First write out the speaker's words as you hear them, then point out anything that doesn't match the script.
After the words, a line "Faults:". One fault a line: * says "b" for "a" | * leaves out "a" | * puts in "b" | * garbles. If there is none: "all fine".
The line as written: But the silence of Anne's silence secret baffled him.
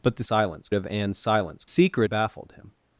But the silence of Anne's silence secret baffled him.
Faults:
all fine